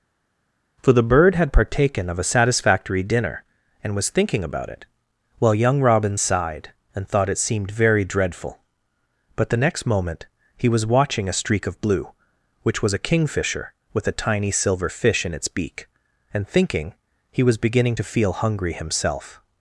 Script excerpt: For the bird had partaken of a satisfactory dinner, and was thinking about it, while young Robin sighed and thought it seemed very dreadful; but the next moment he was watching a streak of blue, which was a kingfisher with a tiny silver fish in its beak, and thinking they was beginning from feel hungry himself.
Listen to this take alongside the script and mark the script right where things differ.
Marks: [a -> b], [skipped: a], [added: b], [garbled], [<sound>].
For the bird had partaken of a satisfactory dinner, and was thinking about it, while young Robin sighed and thought it seemed very dreadful; but the next moment he was watching a streak of blue, which was a kingfisher with a tiny silver fish in its beak, and thinking [they -> he] was beginning [from -> to] feel hungry himself.